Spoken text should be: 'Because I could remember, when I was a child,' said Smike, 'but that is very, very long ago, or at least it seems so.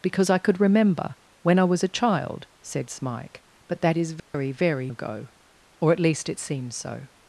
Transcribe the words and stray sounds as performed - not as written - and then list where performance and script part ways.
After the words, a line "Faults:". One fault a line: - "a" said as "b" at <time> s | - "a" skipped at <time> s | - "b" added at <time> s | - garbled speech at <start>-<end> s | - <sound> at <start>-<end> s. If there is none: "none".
'Because I could remember, when I was a child,' said Smike, 'but that is very, very ago, or at least it seems so.
Faults:
- dropout at 4.2-4.3 s
- "long" skipped at 4.9 s